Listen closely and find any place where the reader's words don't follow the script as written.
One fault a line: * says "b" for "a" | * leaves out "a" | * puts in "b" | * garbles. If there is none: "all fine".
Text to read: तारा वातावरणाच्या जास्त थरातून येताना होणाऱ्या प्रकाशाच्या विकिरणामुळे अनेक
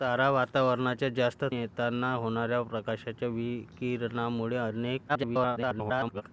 * leaves out "थरातून"
* garbles